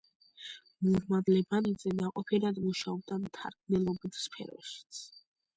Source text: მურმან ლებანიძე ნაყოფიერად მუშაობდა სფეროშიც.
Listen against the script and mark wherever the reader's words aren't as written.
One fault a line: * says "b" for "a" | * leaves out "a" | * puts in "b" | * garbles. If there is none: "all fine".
* puts in "მთარგმნელობით"